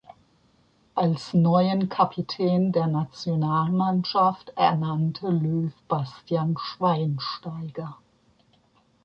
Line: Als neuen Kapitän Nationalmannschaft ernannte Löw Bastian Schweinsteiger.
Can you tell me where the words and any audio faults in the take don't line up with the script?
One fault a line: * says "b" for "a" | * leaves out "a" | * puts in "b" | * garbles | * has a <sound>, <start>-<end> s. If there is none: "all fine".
* puts in "der"